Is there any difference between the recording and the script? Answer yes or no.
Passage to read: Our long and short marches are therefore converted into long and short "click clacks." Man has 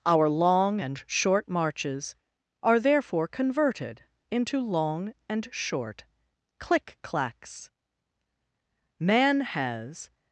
no